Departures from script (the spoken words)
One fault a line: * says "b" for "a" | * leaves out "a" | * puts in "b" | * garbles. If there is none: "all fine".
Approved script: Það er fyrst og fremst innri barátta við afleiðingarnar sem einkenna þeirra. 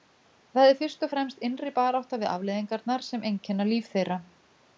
* puts in "líf"